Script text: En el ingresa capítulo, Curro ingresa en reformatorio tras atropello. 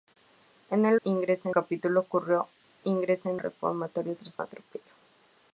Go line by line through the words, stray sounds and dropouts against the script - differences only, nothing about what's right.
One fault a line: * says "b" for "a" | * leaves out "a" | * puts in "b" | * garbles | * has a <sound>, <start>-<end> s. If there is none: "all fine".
all fine